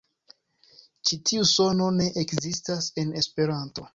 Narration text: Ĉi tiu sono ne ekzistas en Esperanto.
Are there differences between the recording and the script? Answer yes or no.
no